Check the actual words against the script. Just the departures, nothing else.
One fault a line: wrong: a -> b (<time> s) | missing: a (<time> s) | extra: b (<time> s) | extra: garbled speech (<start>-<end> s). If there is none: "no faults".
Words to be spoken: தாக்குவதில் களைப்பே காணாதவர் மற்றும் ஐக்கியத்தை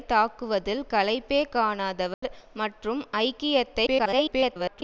extra: garbled speech (3.9-4.8 s)